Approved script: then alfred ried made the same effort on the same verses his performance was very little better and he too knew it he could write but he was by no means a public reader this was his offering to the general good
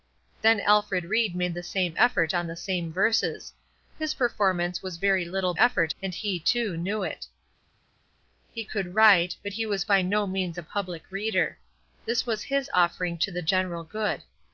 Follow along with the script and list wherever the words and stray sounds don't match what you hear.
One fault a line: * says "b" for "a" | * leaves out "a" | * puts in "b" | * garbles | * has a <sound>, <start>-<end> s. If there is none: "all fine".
* says "effort" for "better"